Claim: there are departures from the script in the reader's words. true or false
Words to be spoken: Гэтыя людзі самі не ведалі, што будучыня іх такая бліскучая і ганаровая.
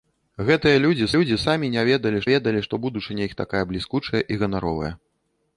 true